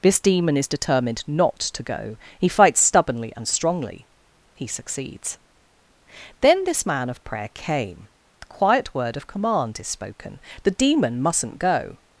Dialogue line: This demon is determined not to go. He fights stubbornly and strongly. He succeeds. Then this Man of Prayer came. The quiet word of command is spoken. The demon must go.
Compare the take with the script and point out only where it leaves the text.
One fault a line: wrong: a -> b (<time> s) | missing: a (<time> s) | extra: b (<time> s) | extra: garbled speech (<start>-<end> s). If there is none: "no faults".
wrong: must -> mustn't (11.2 s)